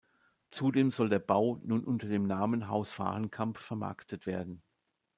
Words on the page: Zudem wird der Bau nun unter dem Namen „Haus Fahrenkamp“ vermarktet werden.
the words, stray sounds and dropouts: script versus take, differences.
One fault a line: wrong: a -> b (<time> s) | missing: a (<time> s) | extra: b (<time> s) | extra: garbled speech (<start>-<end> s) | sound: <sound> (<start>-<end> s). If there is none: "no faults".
wrong: wird -> soll (0.9 s)